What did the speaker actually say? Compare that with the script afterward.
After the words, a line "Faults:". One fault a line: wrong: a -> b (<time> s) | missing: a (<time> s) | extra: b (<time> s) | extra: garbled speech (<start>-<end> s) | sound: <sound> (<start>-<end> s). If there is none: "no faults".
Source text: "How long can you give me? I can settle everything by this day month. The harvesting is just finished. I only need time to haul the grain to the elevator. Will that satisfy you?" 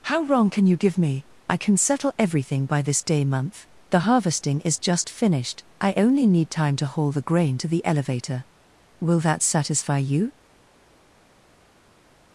"How wrong can you give me? I can settle everything by this day month. The harvesting is just finished. I only need time to haul the grain to the elevator. Will that satisfy you?"
Faults:
wrong: long -> wrong (0.2 s)